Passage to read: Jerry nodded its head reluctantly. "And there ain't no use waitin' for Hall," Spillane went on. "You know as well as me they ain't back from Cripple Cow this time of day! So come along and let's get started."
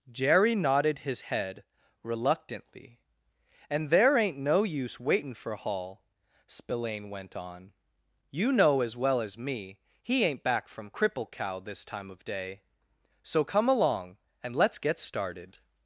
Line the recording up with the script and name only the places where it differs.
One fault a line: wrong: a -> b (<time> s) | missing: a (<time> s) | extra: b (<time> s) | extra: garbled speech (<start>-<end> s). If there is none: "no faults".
wrong: its -> his (1.0 s)
wrong: they -> he (10.0 s)